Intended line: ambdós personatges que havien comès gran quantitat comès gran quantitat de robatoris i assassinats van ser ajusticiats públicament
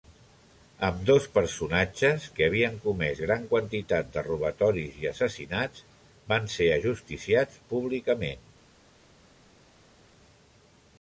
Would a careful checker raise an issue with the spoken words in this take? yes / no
yes